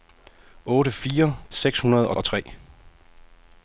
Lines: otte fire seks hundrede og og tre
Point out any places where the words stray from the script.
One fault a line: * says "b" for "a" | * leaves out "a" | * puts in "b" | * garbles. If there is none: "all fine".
all fine